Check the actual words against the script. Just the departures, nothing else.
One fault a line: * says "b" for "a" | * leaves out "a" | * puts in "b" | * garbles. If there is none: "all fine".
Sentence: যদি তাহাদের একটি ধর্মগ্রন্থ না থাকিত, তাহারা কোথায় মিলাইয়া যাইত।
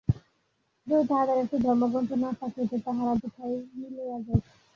all fine